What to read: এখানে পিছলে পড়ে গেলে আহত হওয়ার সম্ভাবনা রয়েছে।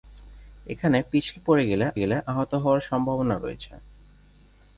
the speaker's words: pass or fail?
fail